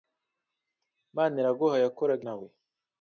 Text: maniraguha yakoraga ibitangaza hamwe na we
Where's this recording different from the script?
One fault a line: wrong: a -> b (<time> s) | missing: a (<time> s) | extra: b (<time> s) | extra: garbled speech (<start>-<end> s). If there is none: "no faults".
missing: ibitangaza hamwe (2.2 s)